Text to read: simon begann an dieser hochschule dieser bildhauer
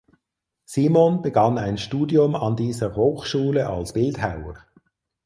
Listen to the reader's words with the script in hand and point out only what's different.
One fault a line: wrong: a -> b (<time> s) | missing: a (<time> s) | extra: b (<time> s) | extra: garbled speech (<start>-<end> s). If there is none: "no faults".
extra: ein studium (1.6 s)
wrong: dieser -> als (3.7 s)